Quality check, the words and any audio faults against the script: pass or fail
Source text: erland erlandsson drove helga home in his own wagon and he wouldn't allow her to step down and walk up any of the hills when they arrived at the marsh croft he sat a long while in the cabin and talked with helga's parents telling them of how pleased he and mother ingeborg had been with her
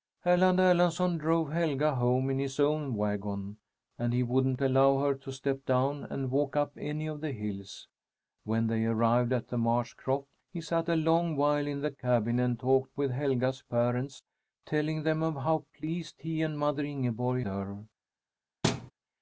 fail